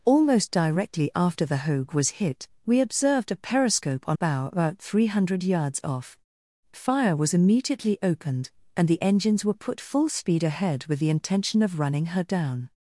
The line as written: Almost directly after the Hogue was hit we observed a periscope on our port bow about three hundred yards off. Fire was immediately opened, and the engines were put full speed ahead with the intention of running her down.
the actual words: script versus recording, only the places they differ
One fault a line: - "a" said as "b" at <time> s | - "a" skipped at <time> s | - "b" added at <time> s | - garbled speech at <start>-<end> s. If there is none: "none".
- "our port" skipped at 4.2 s